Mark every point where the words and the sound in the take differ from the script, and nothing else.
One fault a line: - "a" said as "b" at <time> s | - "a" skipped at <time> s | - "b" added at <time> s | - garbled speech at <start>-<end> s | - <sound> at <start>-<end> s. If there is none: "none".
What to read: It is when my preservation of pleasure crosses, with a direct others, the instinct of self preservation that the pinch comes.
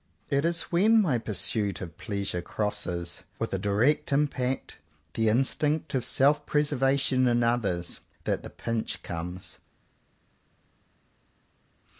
- "preservation" said as "pursuit" at 1.2 s
- "others" said as "impact" at 4.1 s
- "in others" added at 7.3 s